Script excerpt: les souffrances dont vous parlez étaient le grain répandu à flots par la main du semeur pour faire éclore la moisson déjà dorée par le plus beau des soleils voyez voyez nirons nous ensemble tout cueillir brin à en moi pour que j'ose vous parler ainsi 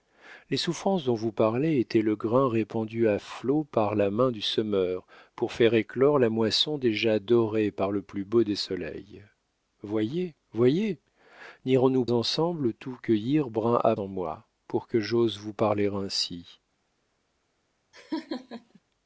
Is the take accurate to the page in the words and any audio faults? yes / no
no